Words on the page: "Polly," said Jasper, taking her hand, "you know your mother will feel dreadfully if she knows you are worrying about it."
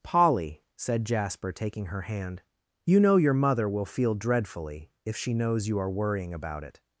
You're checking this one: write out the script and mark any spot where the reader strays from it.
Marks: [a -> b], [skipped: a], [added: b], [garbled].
"Polly," said Jasper, taking her hand, "you know your mother will feel dreadfully if she knows you are worrying about it."